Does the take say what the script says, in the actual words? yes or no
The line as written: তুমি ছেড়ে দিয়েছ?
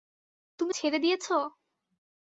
yes